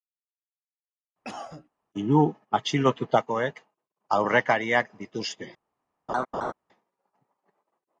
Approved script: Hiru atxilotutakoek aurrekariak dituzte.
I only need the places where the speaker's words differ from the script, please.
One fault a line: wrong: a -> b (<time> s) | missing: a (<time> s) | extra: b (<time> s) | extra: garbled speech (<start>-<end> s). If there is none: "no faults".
no faults